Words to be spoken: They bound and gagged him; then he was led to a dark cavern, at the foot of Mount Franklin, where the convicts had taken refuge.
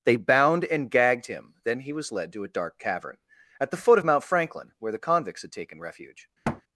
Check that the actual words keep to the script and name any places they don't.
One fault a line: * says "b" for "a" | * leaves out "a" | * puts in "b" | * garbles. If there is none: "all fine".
all fine